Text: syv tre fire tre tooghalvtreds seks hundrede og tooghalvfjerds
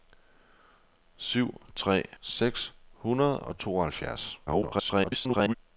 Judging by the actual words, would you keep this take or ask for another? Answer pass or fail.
fail